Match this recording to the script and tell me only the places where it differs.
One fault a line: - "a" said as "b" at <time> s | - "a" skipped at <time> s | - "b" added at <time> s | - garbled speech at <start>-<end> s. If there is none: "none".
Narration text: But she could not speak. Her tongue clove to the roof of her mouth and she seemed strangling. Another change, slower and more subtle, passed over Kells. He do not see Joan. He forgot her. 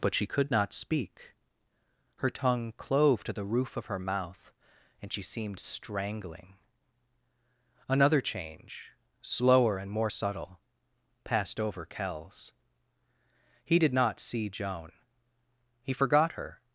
- "do" said as "did" at 13.8 s